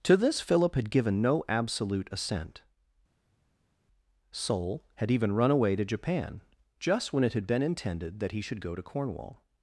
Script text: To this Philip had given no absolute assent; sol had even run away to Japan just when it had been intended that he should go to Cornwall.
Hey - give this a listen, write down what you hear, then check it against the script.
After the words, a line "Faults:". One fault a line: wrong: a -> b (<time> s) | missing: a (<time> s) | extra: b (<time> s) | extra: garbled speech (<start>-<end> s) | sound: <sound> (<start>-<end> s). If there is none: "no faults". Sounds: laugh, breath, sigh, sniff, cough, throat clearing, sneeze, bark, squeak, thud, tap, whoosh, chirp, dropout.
To this Philip had given no absolute assent; sol had even run away to Japan just when it had been intended that he should go to Cornwall.
Faults:
no faults